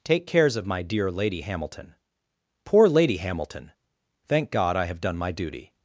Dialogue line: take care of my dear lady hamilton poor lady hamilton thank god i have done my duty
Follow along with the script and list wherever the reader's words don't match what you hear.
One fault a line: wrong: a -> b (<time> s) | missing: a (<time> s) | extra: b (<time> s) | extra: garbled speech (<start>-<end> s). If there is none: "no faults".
wrong: care -> cares (0.2 s)